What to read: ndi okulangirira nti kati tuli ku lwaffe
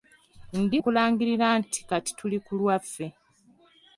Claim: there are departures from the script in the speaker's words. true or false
false